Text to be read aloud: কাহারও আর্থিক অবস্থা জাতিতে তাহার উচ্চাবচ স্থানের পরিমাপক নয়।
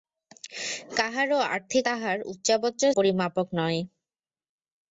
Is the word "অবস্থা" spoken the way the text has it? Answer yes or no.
no